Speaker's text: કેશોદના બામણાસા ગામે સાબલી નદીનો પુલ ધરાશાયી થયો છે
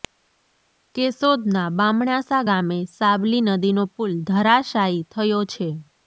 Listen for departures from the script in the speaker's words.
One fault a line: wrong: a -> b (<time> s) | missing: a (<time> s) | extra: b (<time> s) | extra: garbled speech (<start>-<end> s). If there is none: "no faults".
no faults